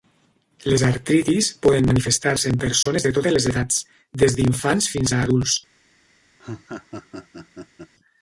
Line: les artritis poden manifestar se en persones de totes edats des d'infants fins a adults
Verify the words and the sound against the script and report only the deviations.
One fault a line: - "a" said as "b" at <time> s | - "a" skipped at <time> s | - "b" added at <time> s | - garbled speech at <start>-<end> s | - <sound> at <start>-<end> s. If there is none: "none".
- dropout at 2.8-2.9 s
- "les" added at 3.4 s
- laugh at 6.4-7.9 s